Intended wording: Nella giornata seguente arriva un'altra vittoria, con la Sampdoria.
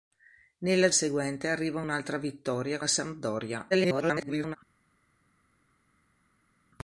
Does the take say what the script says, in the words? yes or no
no